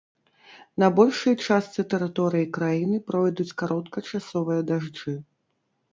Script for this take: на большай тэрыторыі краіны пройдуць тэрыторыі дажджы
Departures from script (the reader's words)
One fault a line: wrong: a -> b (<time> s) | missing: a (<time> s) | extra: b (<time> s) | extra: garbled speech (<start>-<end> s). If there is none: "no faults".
extra: частцы (1.5 s)
wrong: тэрыторыі -> кароткачасовыя (3.6 s)